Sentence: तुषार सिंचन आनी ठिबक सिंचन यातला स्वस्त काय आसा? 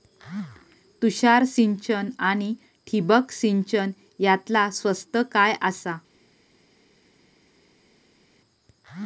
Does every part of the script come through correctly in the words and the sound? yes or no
yes